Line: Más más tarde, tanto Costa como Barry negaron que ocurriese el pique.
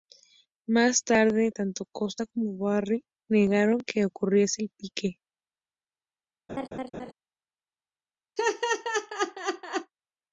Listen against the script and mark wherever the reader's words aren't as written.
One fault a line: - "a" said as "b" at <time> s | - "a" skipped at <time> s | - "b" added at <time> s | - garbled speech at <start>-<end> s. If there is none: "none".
- "más" skipped at 1.0 s